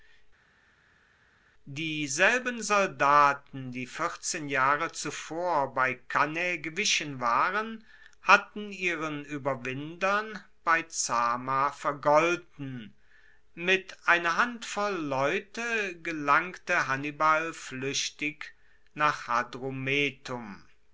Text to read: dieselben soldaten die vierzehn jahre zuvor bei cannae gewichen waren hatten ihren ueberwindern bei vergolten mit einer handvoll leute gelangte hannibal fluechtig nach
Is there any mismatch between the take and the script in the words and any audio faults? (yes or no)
yes